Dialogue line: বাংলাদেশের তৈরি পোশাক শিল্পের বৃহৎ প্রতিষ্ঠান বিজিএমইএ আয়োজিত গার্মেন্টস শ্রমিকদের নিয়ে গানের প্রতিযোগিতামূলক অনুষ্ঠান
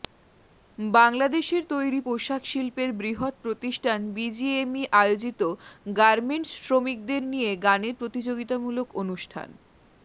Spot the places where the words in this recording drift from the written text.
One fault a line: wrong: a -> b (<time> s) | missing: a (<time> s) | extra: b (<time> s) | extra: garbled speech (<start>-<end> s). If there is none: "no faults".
no faults